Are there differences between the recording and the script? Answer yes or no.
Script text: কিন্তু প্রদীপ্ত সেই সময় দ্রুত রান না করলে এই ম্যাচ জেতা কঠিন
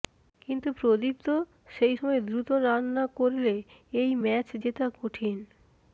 no